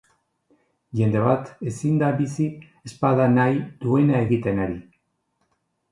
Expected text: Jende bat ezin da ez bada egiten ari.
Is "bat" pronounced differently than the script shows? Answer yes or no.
no